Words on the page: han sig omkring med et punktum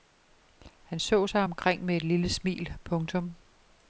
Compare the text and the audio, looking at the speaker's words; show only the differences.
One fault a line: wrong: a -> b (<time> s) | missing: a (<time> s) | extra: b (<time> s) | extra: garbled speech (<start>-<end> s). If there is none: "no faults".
extra: så (1.0 s)
extra: lille smil (2.0 s)